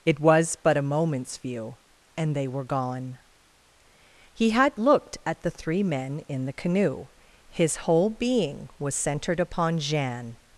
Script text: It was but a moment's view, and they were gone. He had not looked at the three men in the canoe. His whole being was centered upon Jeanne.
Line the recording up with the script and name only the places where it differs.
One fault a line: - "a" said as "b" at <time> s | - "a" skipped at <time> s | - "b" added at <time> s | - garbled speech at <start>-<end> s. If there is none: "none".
- "not" skipped at 4.8 s